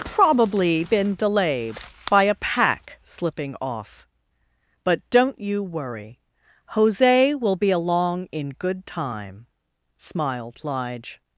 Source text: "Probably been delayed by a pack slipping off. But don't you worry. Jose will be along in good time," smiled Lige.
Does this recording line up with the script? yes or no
yes